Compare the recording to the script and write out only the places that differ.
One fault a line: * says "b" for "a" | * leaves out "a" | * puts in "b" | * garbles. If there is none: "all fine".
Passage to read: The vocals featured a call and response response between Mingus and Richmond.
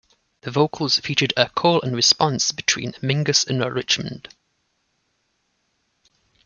* leaves out "response"